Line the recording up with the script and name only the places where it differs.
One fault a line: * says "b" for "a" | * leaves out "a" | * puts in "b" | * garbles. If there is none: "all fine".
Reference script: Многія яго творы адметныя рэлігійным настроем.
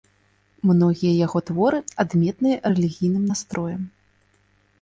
all fine